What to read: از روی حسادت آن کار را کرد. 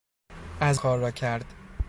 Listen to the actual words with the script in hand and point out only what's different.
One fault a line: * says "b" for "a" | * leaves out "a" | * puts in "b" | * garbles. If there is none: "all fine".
* leaves out "روی حسادت آن"